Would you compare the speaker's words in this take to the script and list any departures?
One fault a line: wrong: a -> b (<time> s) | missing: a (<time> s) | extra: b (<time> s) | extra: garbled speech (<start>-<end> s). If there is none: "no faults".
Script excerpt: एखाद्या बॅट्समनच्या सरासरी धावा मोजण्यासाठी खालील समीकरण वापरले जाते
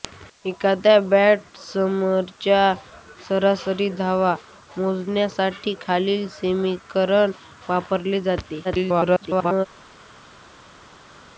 extra: garbled speech (8.6-9.7 s)